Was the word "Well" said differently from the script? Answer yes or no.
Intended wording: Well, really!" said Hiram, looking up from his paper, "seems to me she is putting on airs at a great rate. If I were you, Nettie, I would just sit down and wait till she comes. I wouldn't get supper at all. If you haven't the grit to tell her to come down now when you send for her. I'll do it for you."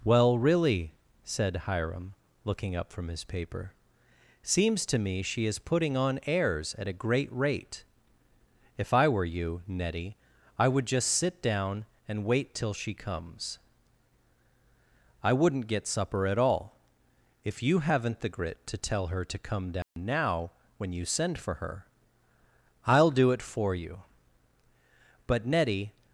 no